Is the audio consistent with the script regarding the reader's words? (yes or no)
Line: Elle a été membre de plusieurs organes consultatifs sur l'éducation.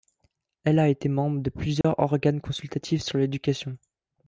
yes